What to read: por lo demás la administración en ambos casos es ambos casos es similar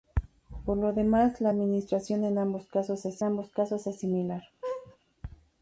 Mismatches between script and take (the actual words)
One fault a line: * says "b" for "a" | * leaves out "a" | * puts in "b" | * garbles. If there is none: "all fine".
all fine